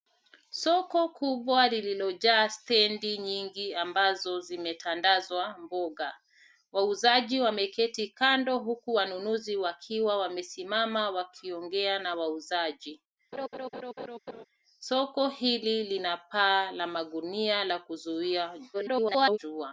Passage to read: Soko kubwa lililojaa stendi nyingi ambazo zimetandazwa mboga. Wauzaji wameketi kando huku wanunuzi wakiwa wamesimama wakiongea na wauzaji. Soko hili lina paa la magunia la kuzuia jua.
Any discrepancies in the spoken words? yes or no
yes